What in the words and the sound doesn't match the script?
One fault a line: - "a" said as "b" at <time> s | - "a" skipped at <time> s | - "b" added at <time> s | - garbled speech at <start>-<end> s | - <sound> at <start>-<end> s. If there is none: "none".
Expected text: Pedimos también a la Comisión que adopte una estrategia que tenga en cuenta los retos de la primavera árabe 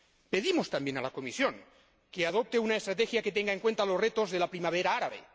none